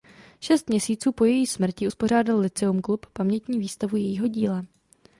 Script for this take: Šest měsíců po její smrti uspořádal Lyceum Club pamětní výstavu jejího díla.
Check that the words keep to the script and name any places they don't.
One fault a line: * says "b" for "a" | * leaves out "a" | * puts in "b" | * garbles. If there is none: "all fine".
all fine